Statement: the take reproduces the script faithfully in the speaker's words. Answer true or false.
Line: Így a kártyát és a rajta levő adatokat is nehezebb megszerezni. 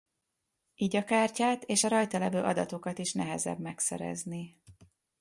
true